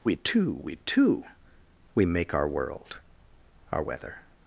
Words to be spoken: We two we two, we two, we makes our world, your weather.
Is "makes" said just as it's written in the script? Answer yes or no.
no